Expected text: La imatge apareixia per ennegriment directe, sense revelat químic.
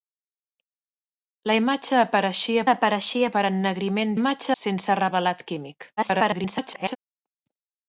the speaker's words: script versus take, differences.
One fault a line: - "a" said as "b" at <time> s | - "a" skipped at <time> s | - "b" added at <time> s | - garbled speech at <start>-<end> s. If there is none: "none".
- "apareixia" added at 2.7 s
- "directe" said as "imatge" at 4.2 s
- garbled speech at 6.0-7.0 s